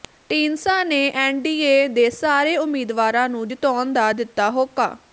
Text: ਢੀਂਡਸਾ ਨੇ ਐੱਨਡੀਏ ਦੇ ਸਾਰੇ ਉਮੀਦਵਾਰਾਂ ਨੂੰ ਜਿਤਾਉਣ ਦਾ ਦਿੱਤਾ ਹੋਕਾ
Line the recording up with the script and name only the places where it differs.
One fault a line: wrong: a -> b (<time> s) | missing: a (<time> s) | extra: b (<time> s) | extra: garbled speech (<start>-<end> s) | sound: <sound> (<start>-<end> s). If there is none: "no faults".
no faults